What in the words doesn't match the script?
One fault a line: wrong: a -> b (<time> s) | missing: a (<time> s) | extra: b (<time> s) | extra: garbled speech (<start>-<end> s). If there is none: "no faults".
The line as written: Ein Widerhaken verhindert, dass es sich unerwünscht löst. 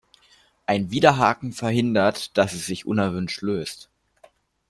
no faults